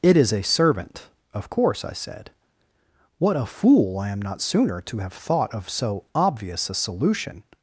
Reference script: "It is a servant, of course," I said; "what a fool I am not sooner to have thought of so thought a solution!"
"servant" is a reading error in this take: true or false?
false